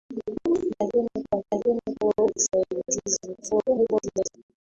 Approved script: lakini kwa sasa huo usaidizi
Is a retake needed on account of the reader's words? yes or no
yes